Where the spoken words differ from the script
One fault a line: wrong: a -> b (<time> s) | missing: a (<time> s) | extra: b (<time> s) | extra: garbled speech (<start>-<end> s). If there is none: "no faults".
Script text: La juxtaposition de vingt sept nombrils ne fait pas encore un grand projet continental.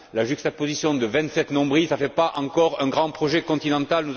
no faults